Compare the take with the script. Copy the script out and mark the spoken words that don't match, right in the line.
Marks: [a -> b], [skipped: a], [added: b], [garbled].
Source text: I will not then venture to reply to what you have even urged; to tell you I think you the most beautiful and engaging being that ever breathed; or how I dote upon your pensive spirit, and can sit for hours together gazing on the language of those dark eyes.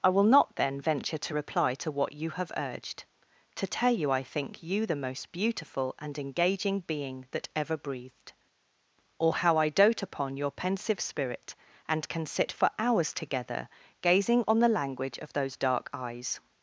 I will not then venture to reply to what you have [skipped: even] urged; to tell you I think you the most beautiful and engaging being that ever breathed; or how I dote upon your pensive spirit, and can sit for hours together gazing on the language of those dark eyes.